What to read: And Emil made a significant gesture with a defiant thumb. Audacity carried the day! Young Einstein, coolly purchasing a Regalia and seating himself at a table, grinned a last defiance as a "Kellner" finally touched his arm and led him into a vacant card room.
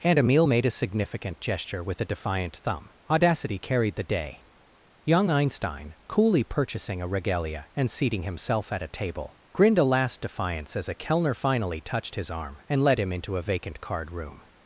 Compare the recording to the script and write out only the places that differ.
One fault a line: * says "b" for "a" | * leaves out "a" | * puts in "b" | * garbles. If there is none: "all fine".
all fine